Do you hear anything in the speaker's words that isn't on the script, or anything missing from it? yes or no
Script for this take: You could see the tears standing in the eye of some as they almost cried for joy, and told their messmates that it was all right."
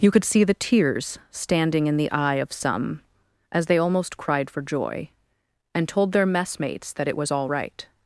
no